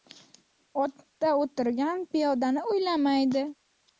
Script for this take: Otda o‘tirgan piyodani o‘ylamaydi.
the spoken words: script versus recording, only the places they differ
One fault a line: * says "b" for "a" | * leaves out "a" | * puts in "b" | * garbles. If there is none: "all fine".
all fine